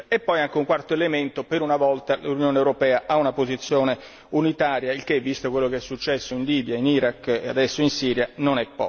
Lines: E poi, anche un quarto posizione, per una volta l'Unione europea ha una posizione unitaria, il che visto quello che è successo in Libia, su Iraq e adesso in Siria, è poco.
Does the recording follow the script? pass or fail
fail